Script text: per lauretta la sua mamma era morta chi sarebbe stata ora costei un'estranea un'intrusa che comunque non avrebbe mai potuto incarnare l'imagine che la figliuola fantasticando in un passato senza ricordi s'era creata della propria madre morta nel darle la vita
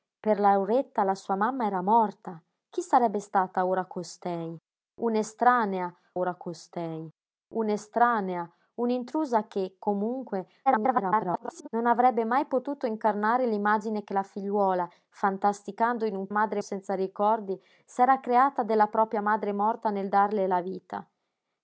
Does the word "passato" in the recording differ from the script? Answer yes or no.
yes